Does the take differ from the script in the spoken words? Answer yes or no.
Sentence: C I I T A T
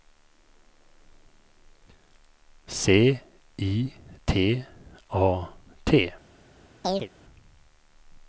yes